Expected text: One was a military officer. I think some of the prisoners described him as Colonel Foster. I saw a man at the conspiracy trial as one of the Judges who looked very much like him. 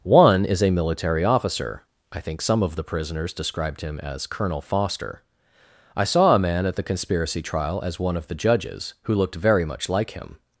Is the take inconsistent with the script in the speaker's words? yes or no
yes